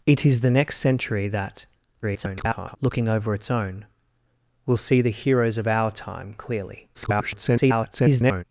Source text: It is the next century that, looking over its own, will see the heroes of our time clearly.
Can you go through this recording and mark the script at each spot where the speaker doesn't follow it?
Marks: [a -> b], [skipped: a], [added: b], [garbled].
It is the next century that, [garbled] looking over its own, will see the heroes of our time clearly. [garbled]